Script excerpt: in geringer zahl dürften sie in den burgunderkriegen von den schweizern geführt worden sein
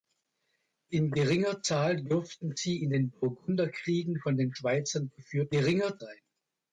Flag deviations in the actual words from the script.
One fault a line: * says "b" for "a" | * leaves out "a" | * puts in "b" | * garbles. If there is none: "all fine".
* says "geringer" for "worden"